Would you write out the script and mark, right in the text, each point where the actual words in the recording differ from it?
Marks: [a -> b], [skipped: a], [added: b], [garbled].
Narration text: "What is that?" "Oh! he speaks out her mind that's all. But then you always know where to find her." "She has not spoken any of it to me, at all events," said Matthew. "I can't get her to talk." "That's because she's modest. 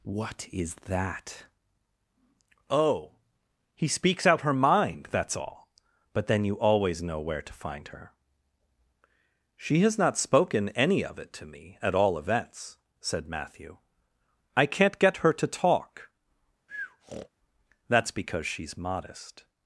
"What is that?" "Oh! he speaks out her mind that's all. But then you always know where to find her." "She has not spoken any of it to me, at all events," said Matthew. "I can't get her to talk." "That's because she's modest.